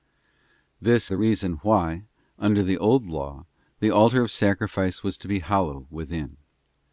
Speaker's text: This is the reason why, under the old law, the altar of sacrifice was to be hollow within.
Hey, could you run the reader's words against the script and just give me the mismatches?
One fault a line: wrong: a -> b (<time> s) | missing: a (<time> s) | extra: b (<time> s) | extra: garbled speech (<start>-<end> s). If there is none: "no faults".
missing: is (1.1 s)